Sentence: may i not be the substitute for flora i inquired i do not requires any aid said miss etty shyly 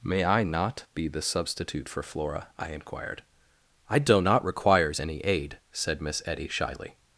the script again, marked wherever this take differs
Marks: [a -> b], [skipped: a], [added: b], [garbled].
may i not be the substitute for flora i inquired i do not requires any aid said miss etty shyly